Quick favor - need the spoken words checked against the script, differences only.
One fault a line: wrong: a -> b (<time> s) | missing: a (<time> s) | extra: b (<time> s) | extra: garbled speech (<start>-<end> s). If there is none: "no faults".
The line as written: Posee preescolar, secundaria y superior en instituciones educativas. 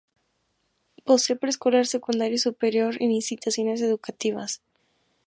no faults